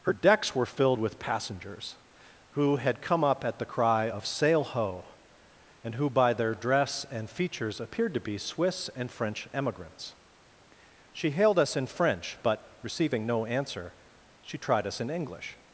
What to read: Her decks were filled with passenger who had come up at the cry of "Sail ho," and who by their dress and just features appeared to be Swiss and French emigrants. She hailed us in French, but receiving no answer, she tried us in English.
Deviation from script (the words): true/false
true